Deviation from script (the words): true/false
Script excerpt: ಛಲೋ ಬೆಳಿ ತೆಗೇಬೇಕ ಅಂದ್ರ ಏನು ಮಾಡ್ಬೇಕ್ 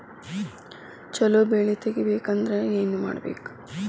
false